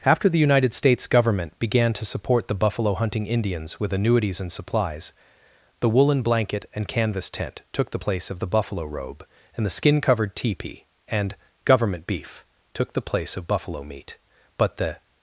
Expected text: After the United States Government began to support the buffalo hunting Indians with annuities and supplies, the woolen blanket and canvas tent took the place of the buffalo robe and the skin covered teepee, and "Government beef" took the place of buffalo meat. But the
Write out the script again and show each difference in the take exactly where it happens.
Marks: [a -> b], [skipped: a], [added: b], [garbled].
After the United States Government began to support the buffalo hunting Indians with annuities and supplies, the woolen blanket and canvas tent took the place of the buffalo robe and the skin covered teepee, and "Government beef" took the place of buffalo meat. But the